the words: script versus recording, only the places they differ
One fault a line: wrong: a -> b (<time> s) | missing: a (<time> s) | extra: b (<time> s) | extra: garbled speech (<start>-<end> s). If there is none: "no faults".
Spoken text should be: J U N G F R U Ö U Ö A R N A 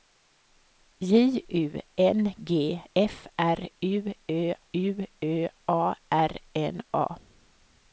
no faults